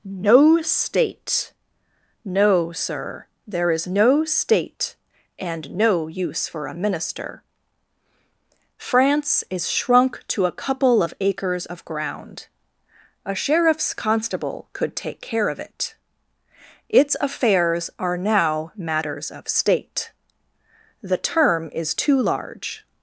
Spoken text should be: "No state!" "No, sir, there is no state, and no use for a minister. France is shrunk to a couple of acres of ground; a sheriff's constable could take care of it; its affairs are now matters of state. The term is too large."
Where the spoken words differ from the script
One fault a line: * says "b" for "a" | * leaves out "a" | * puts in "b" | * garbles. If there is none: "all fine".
all fine